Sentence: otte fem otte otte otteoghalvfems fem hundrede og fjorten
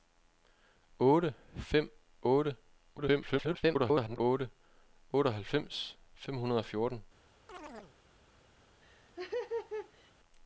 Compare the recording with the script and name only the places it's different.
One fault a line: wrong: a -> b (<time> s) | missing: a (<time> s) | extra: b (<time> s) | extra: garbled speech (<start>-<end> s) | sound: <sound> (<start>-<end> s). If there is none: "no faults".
extra: garbled speech (3.0-4.2 s)
sound: chirp (7.5-8.0 s)
sound: laugh (8.8-10.1 s)